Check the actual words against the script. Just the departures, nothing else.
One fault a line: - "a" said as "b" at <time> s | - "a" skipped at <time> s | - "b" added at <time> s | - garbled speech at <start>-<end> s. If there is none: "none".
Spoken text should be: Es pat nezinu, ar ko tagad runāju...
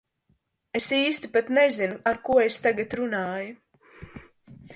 - "īsti" added at 1.0 s
- "es" added at 2.4 s